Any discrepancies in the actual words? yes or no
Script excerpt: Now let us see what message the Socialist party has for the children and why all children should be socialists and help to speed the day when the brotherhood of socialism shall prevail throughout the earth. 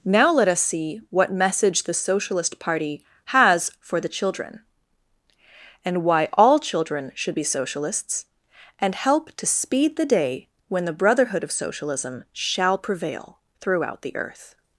no